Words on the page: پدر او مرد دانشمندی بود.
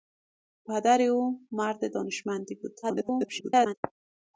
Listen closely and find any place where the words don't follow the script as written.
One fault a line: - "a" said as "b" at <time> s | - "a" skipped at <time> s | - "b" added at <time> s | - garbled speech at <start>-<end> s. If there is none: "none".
- garbled speech at 2.8-3.7 s